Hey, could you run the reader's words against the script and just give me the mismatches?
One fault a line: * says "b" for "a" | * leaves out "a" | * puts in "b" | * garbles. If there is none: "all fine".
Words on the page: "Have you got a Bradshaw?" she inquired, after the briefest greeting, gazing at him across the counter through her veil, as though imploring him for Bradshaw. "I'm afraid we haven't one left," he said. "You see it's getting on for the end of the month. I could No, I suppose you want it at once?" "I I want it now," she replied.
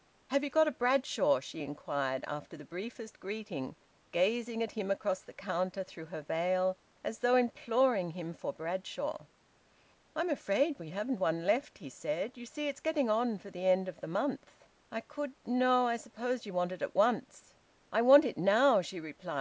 * leaves out "I"